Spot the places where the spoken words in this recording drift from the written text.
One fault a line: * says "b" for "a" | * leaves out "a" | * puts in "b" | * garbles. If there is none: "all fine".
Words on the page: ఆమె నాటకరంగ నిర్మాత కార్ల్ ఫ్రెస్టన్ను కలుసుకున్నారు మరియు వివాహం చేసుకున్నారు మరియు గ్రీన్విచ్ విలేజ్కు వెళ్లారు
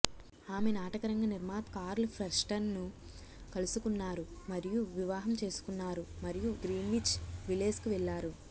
all fine